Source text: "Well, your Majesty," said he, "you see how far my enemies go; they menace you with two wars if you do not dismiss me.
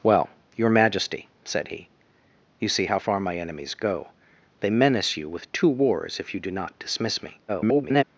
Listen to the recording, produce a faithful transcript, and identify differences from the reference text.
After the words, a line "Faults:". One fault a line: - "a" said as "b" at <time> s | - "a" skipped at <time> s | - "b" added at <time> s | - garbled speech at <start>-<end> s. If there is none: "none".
"Well, your Majesty," said he, "you see how far my enemies go; they menace you with two wars if you do not dismiss me. [garbled]
Faults:
- garbled speech at 7.5-8.0 s